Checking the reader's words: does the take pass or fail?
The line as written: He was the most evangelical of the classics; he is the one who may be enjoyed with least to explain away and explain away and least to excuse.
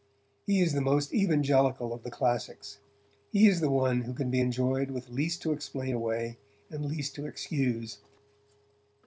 fail